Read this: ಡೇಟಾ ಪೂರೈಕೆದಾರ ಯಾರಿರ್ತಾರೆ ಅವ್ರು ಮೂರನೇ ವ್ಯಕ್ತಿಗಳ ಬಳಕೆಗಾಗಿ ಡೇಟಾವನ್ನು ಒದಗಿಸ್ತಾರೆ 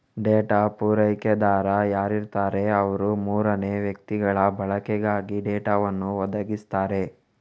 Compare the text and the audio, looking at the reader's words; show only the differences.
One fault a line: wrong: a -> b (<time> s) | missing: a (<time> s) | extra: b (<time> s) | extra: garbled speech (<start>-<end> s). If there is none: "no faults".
no faults